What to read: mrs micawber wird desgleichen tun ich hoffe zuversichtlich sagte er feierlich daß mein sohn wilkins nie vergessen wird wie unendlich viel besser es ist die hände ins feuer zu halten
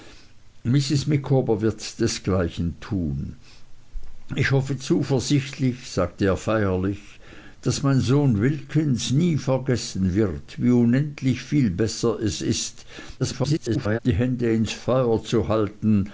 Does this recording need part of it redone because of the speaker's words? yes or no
yes